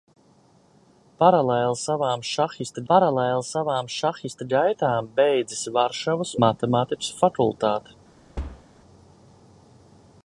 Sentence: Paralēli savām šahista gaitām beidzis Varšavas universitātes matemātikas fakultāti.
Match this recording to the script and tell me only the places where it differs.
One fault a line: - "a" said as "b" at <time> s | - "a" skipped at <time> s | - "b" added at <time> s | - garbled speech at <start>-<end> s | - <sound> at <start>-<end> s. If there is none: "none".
- "paralēli savām šahista" added at 2.9 s
- "universitātes" skipped at 6.4 s
- thud at 8.4-8.7 s